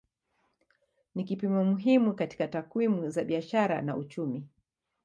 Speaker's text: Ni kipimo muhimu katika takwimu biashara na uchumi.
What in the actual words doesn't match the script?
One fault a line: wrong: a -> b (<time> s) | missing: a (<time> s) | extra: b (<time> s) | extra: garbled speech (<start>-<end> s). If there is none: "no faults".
extra: za (3.1 s)